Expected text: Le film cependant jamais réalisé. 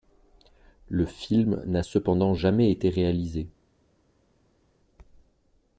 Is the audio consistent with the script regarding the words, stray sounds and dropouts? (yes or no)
no